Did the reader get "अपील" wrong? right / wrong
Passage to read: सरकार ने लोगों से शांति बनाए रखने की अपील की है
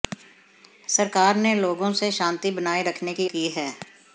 wrong